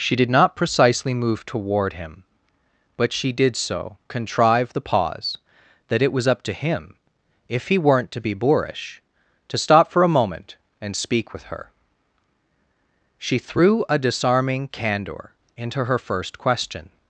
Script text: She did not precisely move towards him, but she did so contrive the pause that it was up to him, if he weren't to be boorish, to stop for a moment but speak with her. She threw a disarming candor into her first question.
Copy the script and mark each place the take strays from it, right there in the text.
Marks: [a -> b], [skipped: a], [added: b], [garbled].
She did not precisely move [towards -> toward] him, but she did so contrive the pause that it was up to him, if he weren't to be boorish, to stop for a moment [but -> and] speak with her. She threw a disarming candor into her first question.